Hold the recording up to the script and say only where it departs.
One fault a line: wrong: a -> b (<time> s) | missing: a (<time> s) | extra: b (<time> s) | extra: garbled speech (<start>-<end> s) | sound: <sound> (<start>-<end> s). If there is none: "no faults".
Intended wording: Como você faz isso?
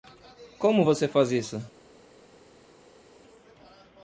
no faults